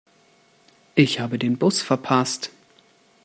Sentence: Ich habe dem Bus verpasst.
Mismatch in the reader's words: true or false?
true